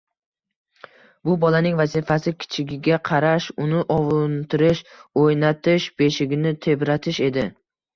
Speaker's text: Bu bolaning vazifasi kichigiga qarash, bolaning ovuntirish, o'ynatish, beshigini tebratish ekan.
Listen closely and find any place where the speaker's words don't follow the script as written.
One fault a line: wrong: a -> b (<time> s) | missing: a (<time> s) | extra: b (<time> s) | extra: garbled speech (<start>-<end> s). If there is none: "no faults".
wrong: bolaning -> uni (3.7 s)
wrong: ekan -> edi (7.3 s)